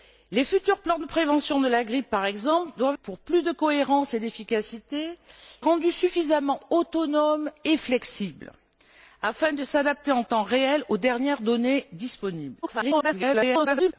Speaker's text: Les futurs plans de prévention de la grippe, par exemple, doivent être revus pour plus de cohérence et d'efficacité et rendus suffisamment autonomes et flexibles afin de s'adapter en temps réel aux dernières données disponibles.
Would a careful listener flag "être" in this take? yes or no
yes